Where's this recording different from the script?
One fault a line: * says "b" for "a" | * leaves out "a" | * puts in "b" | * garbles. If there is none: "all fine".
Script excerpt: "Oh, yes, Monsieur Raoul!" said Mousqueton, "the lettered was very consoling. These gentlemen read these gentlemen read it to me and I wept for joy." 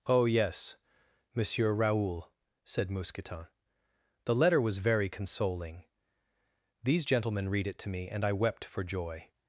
* says "letter" for "lettered"
* leaves out "these gentlemen read"